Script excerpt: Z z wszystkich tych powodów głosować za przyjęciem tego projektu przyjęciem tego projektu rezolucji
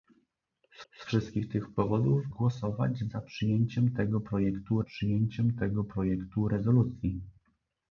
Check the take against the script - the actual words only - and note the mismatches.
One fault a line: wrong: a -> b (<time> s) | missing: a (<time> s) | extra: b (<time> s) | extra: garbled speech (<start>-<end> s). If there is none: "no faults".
no faults